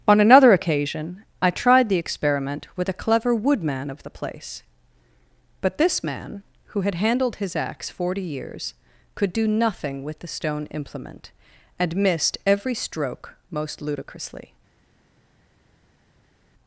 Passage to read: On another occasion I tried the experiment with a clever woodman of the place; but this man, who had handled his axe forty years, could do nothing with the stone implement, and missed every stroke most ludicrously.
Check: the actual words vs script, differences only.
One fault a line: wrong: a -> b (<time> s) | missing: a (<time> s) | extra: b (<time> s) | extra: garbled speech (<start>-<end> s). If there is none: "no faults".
no faults